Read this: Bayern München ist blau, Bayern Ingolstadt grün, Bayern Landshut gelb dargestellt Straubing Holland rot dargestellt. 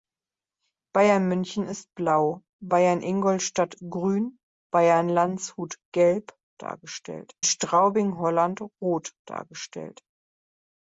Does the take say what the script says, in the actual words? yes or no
yes